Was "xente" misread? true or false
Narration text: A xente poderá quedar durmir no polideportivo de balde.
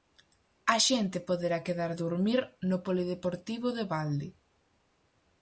false